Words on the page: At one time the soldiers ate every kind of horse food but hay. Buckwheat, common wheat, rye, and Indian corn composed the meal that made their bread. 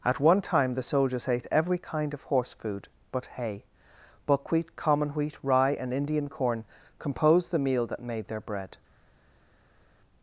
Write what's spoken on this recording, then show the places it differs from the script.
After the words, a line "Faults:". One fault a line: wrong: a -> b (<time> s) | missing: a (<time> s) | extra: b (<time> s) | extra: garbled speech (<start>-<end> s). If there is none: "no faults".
At one time the soldiers ate every kind of horse food but hay. Buckwheat, common wheat, rye, and Indian corn composed the meal that made their bread.
Faults:
no faults